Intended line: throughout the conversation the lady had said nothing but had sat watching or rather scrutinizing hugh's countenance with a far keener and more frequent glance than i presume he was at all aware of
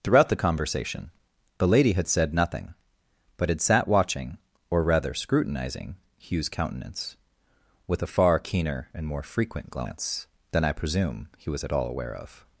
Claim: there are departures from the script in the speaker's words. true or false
false